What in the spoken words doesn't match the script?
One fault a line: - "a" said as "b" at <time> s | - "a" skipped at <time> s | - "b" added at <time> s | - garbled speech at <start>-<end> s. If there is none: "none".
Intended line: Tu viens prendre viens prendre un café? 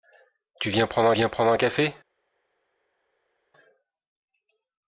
none